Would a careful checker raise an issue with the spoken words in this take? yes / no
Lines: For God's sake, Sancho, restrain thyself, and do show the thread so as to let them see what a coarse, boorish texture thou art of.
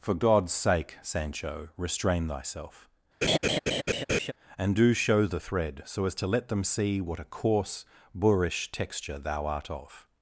no